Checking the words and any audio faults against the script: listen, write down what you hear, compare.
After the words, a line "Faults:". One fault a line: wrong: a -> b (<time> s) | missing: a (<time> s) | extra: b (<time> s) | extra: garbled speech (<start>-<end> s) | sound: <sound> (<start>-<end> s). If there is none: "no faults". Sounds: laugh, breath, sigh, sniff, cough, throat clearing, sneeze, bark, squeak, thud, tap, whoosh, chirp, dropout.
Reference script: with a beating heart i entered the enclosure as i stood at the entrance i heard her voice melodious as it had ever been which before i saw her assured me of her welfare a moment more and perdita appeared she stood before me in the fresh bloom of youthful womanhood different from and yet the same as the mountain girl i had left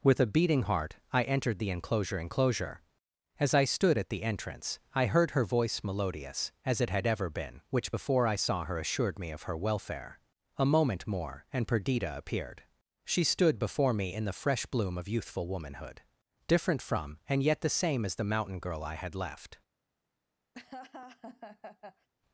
with a beating heart i entered the enclosure enclosure as i stood at the entrance i heard her voice melodious as it had ever been which before i saw her assured me of her welfare a moment more and perdita appeared she stood before me in the fresh bloom of youthful womanhood different from and yet the same as the mountain girl i had left
Faults:
extra: enclosure (2.2 s)
sound: laugh (20.5-22.1 s)